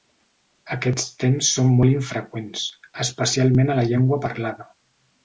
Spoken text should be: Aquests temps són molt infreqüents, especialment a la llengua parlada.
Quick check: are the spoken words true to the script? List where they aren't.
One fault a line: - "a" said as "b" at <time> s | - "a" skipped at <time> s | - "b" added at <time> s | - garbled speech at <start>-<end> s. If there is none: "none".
none